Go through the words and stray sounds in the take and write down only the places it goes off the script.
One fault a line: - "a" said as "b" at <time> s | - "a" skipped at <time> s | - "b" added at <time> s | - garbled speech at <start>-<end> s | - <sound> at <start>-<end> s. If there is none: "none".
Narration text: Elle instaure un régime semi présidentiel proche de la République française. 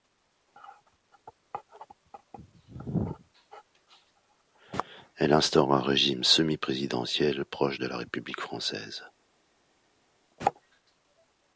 none